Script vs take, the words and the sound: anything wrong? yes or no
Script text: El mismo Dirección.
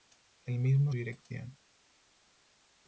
no